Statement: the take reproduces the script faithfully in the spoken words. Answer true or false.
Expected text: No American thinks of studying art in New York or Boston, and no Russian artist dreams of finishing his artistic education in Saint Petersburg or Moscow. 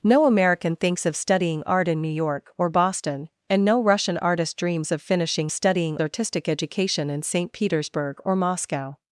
false